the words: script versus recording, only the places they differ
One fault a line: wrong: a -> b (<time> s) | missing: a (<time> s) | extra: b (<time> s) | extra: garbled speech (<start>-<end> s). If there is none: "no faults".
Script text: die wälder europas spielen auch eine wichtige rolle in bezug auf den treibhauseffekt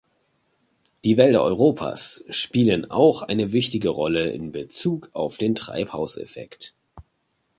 no faults